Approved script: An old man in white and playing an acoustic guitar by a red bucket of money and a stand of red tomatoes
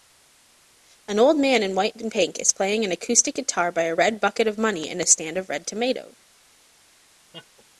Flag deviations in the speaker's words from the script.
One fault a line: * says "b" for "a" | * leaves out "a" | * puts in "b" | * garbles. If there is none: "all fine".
* puts in "pink is"